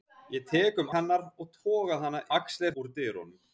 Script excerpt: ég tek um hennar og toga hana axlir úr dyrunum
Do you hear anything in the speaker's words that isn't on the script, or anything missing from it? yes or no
no